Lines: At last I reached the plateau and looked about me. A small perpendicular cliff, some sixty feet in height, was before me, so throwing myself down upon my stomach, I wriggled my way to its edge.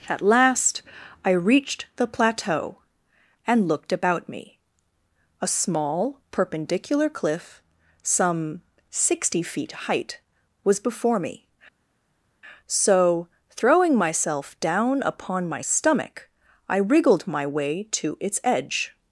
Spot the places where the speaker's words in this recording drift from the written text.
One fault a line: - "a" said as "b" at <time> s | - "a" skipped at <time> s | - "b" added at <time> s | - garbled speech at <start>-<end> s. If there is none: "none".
- "in" skipped at 9.7 s